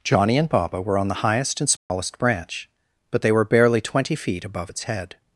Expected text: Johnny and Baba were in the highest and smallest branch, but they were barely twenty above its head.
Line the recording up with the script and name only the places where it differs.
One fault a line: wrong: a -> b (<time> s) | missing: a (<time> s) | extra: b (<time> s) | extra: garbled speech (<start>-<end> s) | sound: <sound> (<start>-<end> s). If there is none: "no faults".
wrong: in -> on (1.0 s)
sound: dropout (1.8-1.9 s)
extra: feet (4.2 s)